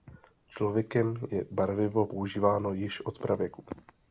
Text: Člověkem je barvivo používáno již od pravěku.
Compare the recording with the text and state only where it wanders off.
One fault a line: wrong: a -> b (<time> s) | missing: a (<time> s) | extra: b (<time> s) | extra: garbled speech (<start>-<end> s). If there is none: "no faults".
no faults